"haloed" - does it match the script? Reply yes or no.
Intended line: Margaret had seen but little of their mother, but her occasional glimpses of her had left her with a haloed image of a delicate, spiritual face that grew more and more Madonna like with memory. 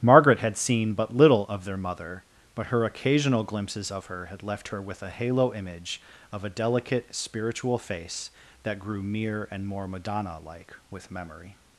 no